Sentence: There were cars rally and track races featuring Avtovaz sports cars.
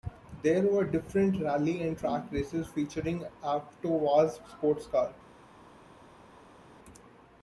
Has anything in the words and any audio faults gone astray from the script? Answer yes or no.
yes